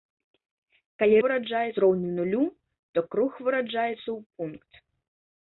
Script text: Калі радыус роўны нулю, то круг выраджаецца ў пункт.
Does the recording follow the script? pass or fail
fail